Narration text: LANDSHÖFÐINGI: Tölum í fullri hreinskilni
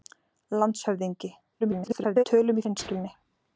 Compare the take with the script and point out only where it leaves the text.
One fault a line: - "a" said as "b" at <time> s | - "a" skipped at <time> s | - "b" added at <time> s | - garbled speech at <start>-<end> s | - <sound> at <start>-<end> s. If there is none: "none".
- garbled speech at 1.6-2.2 s
- "fullri" skipped at 2.7 s